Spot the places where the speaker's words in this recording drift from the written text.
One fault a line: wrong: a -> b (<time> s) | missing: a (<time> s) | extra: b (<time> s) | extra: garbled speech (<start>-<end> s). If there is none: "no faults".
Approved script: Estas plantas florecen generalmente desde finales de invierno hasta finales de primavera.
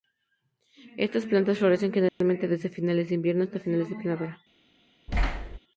no faults